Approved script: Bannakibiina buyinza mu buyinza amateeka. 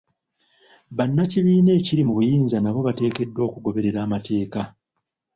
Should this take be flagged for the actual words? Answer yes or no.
yes